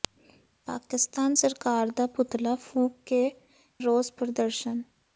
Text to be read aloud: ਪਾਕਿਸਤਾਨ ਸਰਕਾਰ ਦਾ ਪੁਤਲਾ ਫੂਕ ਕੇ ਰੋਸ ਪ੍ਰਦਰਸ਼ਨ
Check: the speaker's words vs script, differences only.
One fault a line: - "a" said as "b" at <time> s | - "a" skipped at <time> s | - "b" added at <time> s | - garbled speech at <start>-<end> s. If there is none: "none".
none